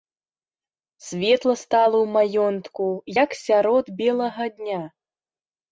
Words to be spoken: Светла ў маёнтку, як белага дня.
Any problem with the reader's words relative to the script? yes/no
yes